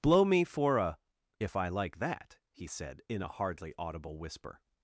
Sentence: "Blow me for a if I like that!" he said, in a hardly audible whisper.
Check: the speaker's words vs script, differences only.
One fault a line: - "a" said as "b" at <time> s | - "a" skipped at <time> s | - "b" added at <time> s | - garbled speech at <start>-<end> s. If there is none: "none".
none